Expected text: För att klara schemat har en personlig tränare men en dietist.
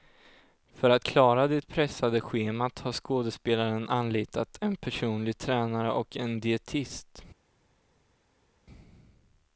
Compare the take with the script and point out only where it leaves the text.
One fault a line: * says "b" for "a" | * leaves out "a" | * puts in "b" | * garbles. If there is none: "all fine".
* puts in "det pressade"
* puts in "skådespelaren anlitat"
* says "och" for "men"